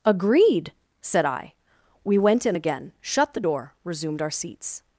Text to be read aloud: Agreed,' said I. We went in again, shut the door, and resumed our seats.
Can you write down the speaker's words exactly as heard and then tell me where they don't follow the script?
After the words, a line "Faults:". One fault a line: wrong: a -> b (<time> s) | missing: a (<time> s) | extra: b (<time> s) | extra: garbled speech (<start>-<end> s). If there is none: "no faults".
Agreed,' said I. We went in again, shut the door, resumed our seats.
Faults:
missing: and (3.7 s)